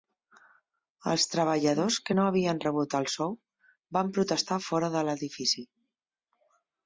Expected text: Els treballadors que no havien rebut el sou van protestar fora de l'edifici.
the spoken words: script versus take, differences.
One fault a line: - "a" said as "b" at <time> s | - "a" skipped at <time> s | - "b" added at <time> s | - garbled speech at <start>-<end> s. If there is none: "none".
none